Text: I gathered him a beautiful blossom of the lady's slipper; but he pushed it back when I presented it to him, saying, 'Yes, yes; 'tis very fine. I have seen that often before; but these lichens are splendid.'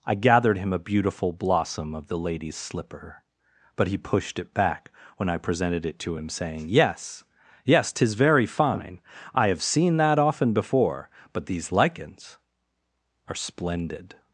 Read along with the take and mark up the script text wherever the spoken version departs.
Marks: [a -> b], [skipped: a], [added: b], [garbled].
I gathered him a beautiful blossom of the lady's slipper; but he pushed it back when I presented it to him, saying, 'Yes, yes; 'tis very fine. I have seen that often before; but these lichens are splendid.'